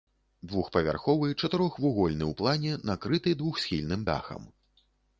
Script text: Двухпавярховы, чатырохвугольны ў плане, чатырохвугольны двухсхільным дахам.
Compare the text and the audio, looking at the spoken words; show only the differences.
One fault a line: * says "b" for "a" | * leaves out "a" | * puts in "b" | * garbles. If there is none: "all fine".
* says "накрыты" for "чатырохвугольны"